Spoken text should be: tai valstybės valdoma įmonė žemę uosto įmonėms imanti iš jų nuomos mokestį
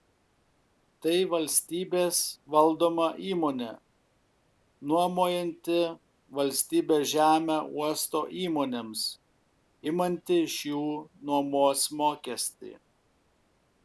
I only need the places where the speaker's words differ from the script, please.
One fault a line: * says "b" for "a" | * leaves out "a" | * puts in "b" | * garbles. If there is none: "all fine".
* puts in "nuomojanti valstybės"